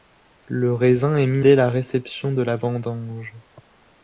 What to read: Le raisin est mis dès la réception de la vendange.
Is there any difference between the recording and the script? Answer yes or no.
no